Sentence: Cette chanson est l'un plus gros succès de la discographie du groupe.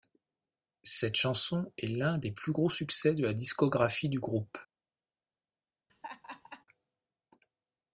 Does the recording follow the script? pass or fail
fail